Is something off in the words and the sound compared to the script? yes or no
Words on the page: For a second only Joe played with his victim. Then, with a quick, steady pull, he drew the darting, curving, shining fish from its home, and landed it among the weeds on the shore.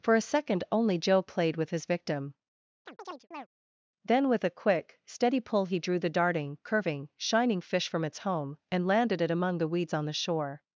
yes